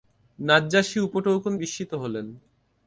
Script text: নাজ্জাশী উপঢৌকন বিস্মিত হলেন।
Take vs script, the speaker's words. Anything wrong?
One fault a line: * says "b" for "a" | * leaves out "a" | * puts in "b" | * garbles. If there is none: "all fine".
all fine